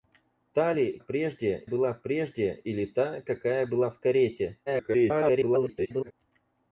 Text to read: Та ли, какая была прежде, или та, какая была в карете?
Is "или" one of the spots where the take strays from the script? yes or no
no